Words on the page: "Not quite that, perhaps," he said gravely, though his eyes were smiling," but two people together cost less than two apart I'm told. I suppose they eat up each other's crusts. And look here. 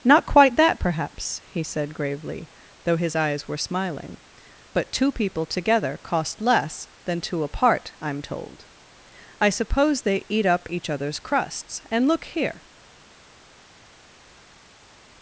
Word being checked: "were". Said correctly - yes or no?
yes